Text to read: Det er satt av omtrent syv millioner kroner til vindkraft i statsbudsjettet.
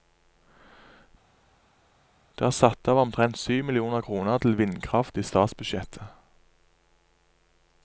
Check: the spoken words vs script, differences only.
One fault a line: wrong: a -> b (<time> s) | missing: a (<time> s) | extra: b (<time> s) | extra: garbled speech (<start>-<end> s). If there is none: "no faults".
no faults